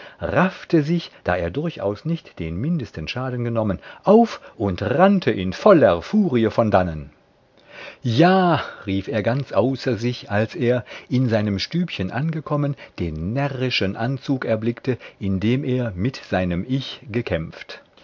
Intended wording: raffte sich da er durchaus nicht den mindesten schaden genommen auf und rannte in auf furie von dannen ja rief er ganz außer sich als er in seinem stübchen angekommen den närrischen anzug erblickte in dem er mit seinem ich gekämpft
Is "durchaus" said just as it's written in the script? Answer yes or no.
yes